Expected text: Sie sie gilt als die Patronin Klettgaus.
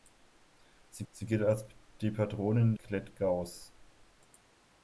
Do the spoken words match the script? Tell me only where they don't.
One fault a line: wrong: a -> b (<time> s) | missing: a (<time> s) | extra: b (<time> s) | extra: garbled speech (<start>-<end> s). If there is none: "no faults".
no faults